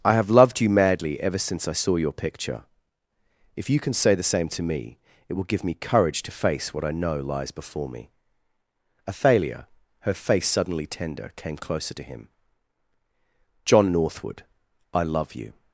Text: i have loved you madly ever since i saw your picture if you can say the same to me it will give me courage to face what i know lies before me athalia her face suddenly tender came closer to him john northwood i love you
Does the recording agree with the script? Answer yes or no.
yes